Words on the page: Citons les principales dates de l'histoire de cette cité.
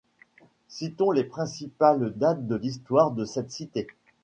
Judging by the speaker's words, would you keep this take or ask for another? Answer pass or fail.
pass